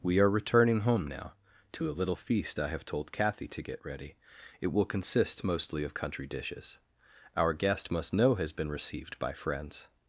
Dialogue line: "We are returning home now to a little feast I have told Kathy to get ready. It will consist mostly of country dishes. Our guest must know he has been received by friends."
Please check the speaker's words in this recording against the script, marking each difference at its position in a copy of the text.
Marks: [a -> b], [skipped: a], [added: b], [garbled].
"We are returning home now to a little feast I have told Kathy to get ready. It will consist mostly of country dishes. Our guest must know [skipped: he] has been received by friends."